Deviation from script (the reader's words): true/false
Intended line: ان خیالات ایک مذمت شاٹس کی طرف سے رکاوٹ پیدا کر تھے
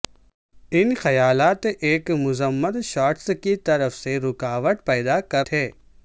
false